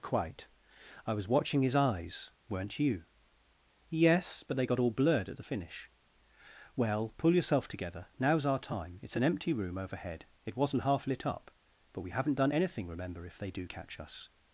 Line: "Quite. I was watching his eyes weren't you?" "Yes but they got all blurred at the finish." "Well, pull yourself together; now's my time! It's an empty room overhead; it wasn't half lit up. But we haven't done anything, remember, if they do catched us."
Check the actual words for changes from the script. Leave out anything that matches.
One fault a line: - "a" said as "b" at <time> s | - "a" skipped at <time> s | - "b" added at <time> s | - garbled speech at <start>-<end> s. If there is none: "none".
- "my" said as "our" at 8.4 s
- "catched" said as "catch" at 13.6 s